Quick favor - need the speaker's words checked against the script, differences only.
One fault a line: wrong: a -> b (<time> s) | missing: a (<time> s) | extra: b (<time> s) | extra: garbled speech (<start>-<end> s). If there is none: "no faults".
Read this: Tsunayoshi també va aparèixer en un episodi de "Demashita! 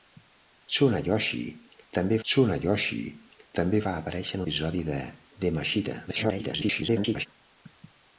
extra: tsunayoshi també (2.3 s)
missing: un (4.4 s)
extra: garbled speech (6.1-7.3 s)